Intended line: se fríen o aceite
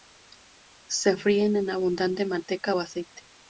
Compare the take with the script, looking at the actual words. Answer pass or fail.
fail